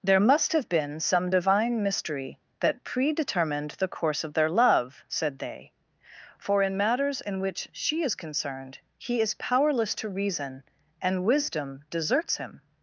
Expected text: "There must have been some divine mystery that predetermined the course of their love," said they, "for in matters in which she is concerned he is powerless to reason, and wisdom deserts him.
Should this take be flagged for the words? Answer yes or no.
no